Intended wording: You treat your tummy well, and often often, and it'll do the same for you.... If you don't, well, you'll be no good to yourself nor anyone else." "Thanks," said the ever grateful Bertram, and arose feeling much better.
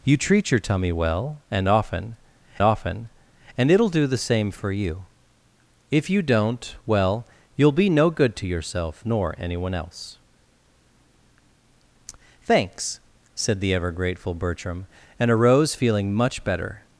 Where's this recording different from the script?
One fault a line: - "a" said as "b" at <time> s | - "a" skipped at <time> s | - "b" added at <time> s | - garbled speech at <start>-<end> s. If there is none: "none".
none